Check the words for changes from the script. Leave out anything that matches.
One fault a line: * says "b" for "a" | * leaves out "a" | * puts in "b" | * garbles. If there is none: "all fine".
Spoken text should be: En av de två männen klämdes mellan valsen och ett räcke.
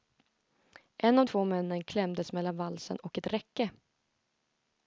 * leaves out "de"